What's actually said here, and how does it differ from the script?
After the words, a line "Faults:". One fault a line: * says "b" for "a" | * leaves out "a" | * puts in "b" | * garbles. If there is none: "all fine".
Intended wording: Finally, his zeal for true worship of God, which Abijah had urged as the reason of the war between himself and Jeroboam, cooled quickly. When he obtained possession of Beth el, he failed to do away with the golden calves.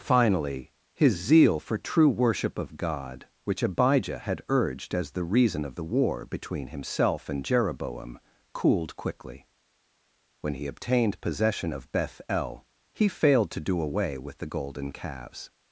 Finally, his zeal for true worship of God, which Abijah had urged as the reason of the war between himself and Jeroboam, cooled quickly. When he obtained possession of Beth el, he failed to do away with the golden calves.
Faults:
all fine